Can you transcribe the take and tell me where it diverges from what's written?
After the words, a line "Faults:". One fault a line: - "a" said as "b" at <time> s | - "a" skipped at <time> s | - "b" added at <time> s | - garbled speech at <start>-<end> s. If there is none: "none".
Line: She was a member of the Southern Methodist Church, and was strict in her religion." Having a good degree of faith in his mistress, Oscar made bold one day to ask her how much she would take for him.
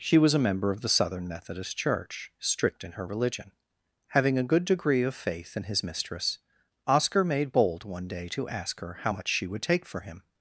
She was a member of the Southern Methodist Church, strict in her religion." Having a good degree of faith in his mistress, Oscar made bold one day to ask her how much she would take for him.
Faults:
- "and was" skipped at 2.3 s